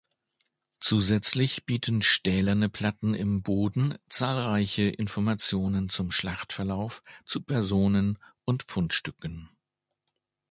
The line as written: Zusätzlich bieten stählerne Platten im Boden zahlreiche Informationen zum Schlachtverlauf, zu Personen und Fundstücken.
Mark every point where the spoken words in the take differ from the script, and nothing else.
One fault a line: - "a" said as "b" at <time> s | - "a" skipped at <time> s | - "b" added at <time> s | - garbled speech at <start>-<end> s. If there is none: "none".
none